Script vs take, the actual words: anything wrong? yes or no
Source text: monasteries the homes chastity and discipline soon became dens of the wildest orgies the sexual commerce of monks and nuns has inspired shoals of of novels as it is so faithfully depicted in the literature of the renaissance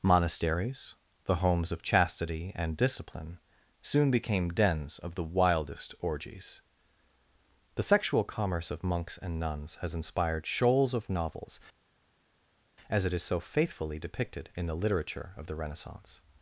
yes